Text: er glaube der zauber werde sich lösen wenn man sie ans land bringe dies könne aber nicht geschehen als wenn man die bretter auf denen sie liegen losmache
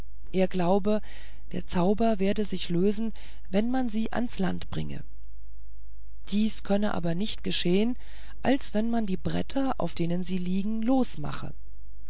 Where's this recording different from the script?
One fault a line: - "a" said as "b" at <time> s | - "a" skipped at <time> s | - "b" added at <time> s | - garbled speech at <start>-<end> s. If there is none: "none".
none